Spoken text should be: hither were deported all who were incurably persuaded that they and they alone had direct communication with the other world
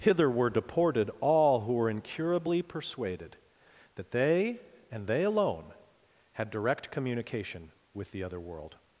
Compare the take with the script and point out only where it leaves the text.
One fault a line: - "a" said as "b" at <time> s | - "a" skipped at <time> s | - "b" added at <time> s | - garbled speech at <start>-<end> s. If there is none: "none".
none